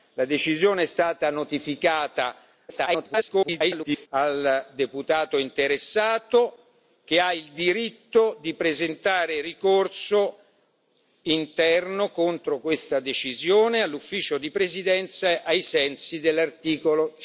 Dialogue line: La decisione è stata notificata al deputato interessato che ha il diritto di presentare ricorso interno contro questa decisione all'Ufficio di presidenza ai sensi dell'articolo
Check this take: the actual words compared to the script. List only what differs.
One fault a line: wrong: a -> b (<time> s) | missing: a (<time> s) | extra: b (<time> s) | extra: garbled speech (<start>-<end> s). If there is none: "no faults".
extra: garbled speech (2.7-4.1 s)